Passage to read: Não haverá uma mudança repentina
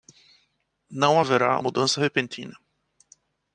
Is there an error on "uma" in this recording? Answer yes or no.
yes